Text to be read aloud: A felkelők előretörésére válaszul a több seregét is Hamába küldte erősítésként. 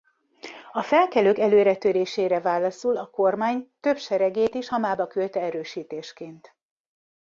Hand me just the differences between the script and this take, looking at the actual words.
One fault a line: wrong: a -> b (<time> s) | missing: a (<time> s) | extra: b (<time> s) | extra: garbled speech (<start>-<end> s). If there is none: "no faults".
extra: kormány (3.1 s)